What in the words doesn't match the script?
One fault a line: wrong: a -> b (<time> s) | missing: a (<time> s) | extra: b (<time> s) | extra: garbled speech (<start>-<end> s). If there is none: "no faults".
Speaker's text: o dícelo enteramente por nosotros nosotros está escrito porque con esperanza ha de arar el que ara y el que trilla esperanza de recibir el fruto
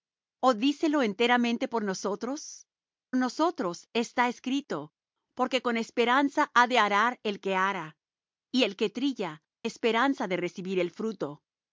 no faults